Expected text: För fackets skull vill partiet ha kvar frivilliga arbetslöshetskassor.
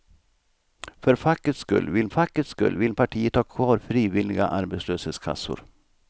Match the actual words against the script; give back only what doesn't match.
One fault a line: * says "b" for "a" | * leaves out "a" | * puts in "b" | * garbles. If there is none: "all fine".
* puts in "fackets skull vill"